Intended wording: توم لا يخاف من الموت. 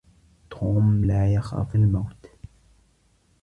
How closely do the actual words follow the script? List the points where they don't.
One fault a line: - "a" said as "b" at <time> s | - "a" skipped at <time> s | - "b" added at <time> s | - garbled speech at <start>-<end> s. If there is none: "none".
- "من" skipped at 1.8 s